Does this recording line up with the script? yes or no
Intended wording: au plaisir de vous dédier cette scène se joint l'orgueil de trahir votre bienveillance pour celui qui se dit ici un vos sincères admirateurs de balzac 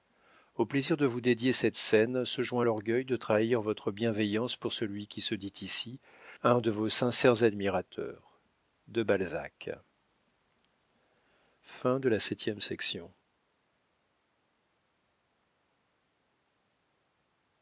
no